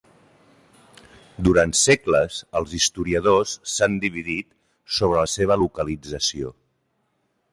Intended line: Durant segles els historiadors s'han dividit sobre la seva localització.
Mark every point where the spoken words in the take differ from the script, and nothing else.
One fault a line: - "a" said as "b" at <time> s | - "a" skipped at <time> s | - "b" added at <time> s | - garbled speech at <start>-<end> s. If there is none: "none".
none